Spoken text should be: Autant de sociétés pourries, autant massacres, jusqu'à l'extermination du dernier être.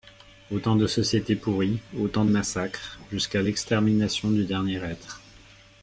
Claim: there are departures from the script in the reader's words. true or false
false